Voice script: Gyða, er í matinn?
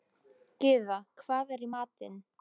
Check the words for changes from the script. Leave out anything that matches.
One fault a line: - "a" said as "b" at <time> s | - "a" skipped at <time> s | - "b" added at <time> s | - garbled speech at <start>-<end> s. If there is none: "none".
- "hvað" added at 1.2 s